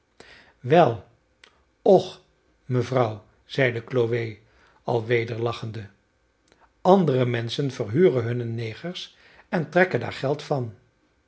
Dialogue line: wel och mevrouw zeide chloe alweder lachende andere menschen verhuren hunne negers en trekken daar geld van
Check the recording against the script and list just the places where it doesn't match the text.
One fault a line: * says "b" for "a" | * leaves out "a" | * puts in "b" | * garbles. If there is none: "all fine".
all fine